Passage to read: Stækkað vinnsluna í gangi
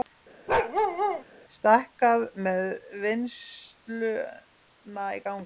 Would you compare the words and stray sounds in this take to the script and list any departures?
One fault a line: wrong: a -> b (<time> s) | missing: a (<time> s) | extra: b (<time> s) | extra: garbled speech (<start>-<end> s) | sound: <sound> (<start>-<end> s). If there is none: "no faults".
sound: bark (0.5-1.2 s)
extra: með (2.5 s)